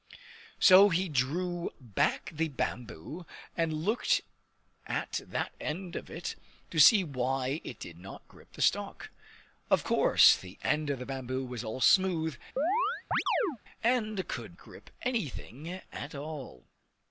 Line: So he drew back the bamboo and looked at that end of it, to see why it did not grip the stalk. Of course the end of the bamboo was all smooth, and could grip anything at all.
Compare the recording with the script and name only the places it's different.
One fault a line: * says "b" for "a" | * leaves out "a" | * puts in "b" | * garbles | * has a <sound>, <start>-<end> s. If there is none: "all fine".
* has a chirp, 12.6-13.6 s